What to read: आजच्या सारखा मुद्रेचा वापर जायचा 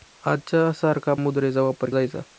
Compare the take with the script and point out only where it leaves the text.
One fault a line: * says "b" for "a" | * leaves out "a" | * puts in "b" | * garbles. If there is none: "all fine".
all fine